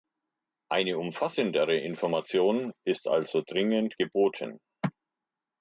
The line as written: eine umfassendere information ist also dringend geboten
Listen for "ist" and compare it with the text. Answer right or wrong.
right